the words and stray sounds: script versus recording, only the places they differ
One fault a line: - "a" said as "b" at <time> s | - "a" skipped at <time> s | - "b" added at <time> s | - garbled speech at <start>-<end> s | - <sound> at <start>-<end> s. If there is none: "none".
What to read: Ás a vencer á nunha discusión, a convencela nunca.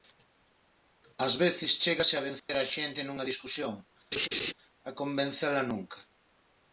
- "veces chégase" added at 1.4 s
- dropout at 2.4-2.5 s
- "xente" added at 2.7 s
- laugh at 4.1-4.5 s